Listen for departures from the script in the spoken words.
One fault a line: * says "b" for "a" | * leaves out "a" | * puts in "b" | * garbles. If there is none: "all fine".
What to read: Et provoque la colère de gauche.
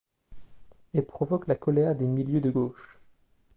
* puts in "des milieux"